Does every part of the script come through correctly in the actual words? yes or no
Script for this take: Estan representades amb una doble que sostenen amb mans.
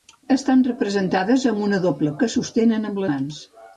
yes